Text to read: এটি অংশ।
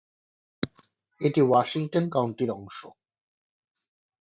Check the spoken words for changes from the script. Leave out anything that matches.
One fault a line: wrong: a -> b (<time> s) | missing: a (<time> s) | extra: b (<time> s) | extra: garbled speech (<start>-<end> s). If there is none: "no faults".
extra: ওয়াশিংটন কাউন্টির (1.4 s)